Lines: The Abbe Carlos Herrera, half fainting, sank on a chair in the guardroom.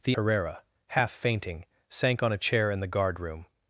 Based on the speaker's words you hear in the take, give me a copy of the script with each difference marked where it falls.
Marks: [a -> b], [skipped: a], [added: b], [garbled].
The [skipped: Abbe Carlos] Herrera, half fainting, sank on a chair in the guardroom.